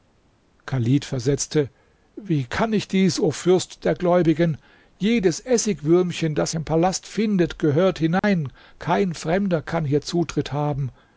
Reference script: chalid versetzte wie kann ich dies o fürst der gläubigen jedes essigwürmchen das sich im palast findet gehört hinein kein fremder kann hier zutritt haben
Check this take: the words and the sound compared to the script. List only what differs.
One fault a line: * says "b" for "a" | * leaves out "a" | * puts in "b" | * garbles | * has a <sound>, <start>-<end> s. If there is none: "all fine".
* leaves out "sich"
* has a dropout, 8.2-8.2 s